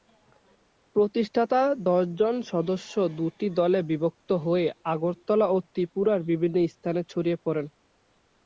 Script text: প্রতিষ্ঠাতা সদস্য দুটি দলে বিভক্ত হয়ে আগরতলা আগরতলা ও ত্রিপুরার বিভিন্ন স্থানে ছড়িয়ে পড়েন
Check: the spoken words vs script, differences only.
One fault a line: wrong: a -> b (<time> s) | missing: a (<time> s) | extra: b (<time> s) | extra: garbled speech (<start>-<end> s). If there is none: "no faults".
extra: দশজন (1.9 s)
missing: আগরতলা (5.5 s)